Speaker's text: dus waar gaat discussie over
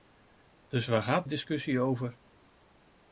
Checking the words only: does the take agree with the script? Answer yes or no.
yes